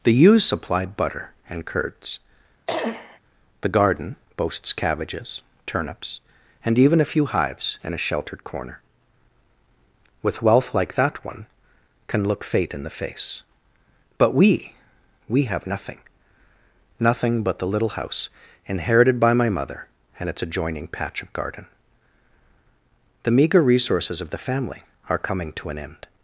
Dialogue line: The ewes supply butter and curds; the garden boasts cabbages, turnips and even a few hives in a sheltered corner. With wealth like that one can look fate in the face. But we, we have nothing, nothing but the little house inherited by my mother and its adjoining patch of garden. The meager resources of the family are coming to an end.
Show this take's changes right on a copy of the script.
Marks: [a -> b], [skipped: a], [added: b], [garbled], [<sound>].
The ewes supply butter and curds; [cough] the garden boasts cabbages, turnips and even a few hives in a sheltered corner. With wealth like that one can look fate in the face. But we, we have nothing, nothing but the little house inherited by my mother and its adjoining patch of garden. The meager resources of the family are coming to an end.